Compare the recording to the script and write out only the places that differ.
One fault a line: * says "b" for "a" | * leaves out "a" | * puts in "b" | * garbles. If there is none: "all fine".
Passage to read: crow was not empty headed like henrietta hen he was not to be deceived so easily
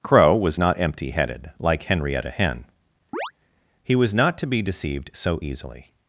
all fine